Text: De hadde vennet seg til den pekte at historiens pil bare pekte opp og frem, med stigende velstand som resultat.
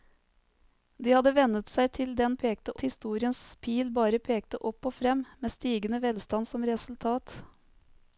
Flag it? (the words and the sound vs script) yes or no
no